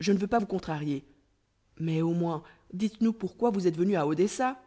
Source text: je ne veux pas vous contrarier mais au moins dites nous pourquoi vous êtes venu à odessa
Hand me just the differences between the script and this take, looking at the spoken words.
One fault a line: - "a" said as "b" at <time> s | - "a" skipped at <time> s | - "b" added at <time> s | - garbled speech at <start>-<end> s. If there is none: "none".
none